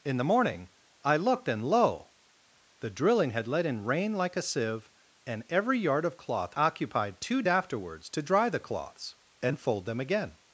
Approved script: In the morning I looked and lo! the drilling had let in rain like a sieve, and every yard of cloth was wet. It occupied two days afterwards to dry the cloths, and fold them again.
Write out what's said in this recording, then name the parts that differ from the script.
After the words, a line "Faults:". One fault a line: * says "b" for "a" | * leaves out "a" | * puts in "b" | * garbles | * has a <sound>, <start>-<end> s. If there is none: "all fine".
In the morning I looked and lo! the drilling had let in rain like a sieve, and every yard of cloth occupied two afterwards to dry the cloths, and fold them again.
Faults:
* leaves out "was wet It"
* leaves out "days"